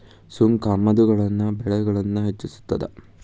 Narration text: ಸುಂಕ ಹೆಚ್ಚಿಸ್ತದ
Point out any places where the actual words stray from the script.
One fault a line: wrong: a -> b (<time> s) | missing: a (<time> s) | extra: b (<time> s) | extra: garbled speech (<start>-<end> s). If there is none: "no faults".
extra: ಆಮದುಗಳ ಬೆಲೆಗಳನ್ನ (0.7 s)